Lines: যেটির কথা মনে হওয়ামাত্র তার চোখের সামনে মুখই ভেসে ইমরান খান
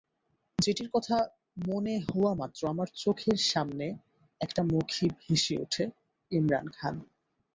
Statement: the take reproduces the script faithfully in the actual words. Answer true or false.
false